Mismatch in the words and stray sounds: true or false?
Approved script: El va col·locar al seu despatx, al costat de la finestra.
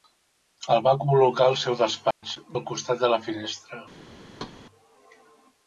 true